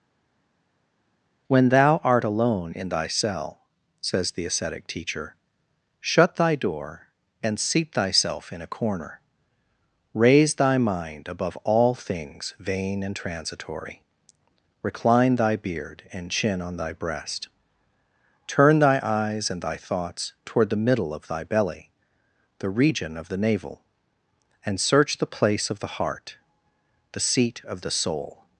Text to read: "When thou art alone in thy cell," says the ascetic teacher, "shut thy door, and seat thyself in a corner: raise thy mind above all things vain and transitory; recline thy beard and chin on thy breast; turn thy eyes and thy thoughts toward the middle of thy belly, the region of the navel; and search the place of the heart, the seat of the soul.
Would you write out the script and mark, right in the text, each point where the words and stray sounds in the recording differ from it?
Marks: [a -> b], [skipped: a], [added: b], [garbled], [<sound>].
"When thou art alone in thy cell," says the ascetic teacher, "shut thy door, and seat thyself in a corner: raise thy mind above all things vain and transitory; recline thy beard and chin on thy breast; turn thy eyes and thy thoughts toward the middle of thy belly, the region of the navel; and search the place of the heart, the seat of the soul.